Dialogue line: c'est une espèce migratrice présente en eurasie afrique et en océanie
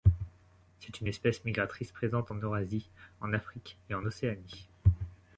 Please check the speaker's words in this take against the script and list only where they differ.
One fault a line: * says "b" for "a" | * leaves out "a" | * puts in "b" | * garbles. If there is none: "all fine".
* puts in "en"